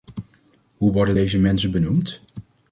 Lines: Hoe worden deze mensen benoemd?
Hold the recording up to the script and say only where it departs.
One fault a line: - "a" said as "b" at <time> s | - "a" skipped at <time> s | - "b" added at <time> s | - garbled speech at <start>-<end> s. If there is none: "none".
none